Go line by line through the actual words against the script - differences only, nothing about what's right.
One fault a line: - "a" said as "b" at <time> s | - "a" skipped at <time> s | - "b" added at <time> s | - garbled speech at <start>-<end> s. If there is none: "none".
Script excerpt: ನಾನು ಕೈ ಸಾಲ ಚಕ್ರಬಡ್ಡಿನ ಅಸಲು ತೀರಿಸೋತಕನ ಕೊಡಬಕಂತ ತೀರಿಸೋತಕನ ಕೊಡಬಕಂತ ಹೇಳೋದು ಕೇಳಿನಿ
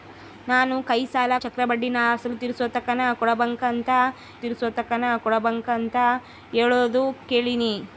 none